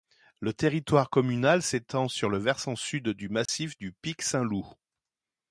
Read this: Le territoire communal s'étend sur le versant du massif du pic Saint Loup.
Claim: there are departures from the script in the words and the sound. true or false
true